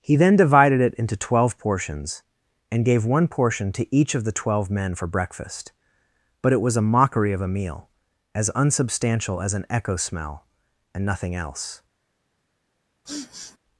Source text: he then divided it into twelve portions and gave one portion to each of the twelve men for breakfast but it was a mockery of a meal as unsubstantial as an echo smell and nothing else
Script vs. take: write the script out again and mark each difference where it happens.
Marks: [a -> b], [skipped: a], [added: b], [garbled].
he then divided it into twelve portions and gave one portion to each of the twelve men for breakfast but it was a mockery of a meal as unsubstantial as an echo smell and nothing else